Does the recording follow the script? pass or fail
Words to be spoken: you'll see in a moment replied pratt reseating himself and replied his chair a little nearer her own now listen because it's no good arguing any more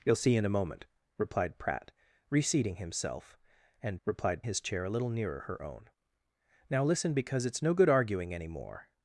pass